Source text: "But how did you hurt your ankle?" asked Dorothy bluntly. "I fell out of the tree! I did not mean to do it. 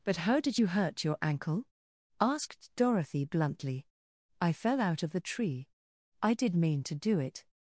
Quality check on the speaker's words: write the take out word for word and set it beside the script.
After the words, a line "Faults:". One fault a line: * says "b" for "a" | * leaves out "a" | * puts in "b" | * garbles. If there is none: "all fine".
"But how did you hurt your ankle?" asked Dorothy bluntly. "I fell out of the tree! I did mean to do it.
Faults:
* leaves out "not"